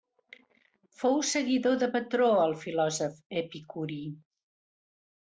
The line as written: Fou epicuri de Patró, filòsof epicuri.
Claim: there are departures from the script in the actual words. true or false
true